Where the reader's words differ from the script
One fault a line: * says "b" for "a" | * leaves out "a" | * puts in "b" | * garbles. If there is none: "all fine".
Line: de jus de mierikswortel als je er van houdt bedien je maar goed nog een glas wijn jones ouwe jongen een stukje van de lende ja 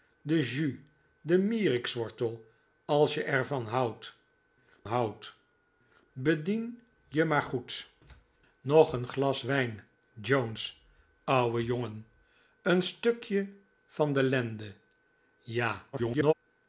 * puts in "houdt"
* garbles